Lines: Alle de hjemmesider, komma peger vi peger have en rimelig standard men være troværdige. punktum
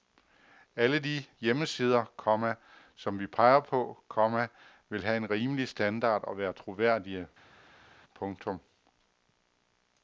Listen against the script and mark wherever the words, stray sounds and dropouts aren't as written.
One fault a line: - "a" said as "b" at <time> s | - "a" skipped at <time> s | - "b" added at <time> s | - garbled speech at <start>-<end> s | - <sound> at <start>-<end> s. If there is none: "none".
- "peger" said as "som" at 3.0 s
- "på komma vil" added at 3.6 s
- "men" said as "og" at 6.2 s